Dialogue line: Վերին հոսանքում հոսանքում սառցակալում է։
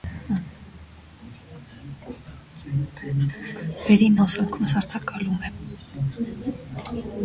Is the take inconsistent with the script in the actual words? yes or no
yes